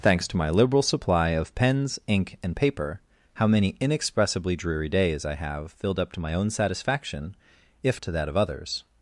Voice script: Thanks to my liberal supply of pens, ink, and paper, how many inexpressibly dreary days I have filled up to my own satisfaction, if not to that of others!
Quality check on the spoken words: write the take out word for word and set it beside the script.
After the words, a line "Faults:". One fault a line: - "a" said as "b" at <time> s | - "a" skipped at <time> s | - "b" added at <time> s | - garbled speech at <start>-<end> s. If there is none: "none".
Thanks to my liberal supply of pens, ink, and paper, how many inexpressibly dreary days I have filled up to my own satisfaction, if to that of others!
Faults:
- "not" skipped at 8.0 s